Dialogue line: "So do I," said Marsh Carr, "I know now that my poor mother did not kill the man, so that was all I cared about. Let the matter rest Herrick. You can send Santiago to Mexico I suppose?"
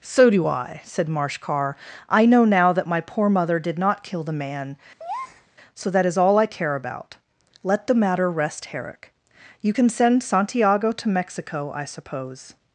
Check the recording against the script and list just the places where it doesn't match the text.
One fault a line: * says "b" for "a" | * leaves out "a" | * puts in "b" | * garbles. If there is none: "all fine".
* says "is" for "was"
* says "care" for "cared"